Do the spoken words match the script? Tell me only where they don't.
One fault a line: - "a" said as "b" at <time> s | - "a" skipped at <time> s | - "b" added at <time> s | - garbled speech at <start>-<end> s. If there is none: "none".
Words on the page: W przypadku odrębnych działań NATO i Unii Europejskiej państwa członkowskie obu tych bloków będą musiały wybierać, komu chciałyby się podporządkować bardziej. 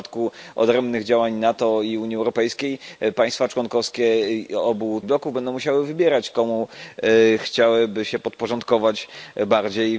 - "tych" skipped at 5.0 s